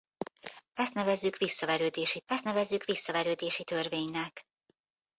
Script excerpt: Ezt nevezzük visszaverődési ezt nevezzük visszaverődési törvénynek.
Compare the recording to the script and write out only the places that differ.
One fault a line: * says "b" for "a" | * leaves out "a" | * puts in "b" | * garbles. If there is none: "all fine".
all fine